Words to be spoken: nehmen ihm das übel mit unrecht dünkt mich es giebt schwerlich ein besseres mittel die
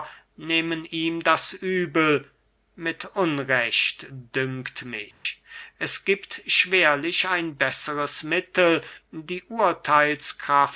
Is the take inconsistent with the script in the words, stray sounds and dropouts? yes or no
yes